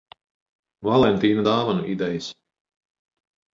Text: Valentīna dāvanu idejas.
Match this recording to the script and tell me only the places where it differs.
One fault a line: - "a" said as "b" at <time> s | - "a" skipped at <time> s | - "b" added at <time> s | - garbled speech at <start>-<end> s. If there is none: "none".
none